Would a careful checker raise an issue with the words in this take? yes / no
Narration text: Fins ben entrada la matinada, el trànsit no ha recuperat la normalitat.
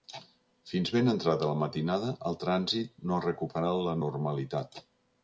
no